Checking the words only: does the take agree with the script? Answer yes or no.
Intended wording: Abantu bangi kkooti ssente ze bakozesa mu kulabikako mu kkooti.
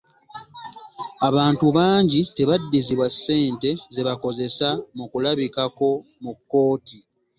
no